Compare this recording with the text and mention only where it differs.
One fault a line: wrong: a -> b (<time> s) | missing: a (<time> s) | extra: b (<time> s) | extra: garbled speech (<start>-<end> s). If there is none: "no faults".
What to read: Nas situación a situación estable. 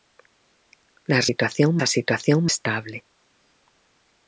no faults